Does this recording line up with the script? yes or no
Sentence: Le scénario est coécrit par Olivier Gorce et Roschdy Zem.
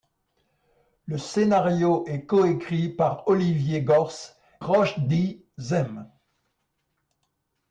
no